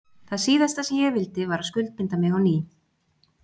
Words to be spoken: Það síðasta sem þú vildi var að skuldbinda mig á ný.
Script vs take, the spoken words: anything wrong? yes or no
yes